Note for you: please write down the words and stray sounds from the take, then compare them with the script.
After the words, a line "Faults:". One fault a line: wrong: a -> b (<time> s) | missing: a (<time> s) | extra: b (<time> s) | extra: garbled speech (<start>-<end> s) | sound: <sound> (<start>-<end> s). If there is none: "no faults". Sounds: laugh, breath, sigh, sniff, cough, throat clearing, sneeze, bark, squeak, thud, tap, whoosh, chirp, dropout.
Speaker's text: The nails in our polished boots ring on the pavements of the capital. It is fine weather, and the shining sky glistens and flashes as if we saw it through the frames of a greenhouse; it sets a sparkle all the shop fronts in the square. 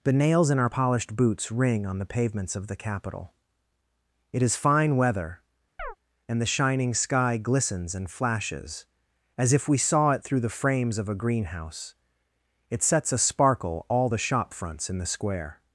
The nails in our polished boots ring on the pavements of the capital. It is fine weather, and the shining sky glistens and flashes as if we saw it through the frames of a greenhouse; it sets a sparkle all the shop fronts in the square.
Faults:
sound: chirp (5.8-6.0 s)